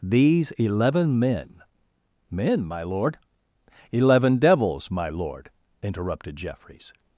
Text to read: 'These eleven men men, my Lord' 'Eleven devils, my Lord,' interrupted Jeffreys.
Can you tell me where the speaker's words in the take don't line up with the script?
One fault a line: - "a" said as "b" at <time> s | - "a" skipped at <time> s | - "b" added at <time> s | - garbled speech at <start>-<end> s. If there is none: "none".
none